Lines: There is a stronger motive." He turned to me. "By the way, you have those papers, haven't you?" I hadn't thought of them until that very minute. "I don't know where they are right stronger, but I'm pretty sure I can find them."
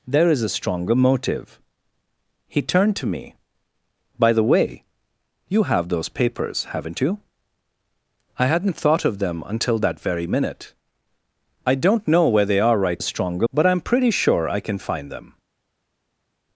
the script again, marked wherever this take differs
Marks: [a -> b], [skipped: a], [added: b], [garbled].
There is a stronger motive." He turned to me. "By the way, you have those papers, haven't you?" I hadn't thought of them until that very minute. "I don't know where they are right stronger, but I'm pretty sure I can find them."